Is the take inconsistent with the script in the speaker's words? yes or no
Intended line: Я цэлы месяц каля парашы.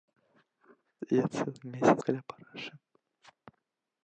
no